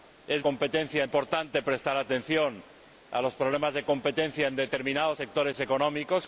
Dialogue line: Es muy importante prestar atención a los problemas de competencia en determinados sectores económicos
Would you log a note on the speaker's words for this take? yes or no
yes